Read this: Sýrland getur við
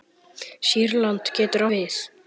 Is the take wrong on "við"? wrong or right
right